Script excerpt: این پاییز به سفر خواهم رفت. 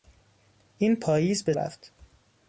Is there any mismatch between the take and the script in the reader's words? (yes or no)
yes